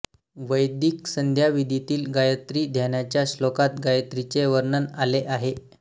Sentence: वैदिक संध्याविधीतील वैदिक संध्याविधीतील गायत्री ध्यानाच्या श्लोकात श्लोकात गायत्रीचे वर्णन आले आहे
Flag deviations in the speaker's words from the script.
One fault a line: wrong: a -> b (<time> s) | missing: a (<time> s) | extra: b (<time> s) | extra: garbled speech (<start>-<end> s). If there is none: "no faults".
missing: वैदिक संध्याविधीतील (2.0 s)
missing: श्लोकात (3.8 s)